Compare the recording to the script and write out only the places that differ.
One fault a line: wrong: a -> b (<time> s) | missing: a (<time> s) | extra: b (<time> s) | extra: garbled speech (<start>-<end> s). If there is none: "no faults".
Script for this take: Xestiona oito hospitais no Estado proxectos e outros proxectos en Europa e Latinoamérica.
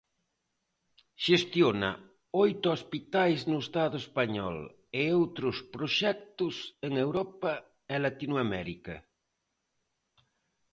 wrong: proxectos -> español (4.0 s)